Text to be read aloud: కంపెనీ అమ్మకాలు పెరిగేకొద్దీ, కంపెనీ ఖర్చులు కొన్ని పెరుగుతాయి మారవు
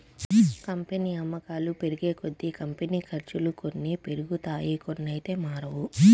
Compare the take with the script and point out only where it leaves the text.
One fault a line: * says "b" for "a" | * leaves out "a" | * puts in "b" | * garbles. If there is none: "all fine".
* puts in "కొన్నైతే"